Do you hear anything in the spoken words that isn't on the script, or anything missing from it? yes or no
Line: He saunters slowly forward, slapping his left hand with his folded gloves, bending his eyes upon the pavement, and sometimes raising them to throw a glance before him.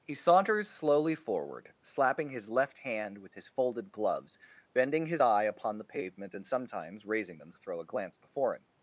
yes